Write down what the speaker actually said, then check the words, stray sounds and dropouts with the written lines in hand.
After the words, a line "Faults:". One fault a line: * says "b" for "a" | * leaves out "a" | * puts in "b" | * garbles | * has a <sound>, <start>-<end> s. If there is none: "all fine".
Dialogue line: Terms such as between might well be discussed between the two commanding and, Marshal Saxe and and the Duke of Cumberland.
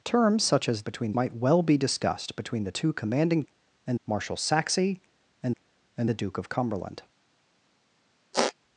Terms such as between might well be discussed between the two commanding and, Marshal Saxe and and the Duke of Cumberland.
Faults:
* has a squeak, 8.3-8.5 s